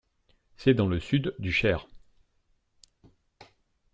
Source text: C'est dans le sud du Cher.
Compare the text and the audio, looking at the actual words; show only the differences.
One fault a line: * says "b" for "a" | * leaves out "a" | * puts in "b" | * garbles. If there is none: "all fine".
all fine